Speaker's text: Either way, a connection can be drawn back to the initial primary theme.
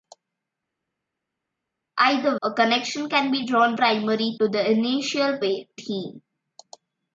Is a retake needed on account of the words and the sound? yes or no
yes